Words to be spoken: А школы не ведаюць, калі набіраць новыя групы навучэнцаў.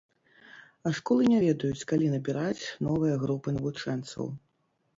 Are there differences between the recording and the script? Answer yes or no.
no